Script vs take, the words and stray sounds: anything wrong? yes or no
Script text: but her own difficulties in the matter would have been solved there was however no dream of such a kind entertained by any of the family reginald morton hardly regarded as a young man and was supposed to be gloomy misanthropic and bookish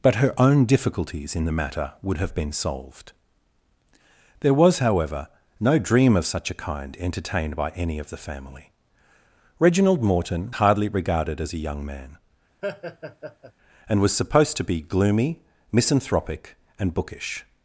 yes